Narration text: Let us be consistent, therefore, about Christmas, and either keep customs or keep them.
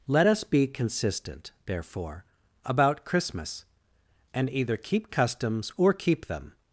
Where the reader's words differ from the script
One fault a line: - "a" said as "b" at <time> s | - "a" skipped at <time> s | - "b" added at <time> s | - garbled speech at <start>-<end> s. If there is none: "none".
none